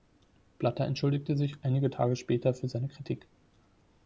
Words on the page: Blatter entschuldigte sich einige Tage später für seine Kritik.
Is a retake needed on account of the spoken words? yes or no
no